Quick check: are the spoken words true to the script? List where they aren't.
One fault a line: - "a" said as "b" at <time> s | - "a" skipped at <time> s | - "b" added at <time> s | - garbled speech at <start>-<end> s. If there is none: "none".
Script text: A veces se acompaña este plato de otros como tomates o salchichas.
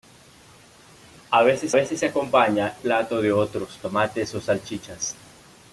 - "veces" added at 1.7 s
- "este" skipped at 2.8 s
- "como" skipped at 3.8 s